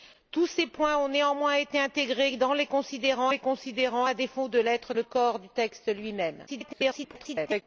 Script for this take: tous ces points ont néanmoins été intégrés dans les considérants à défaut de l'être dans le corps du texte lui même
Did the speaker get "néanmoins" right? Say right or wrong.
right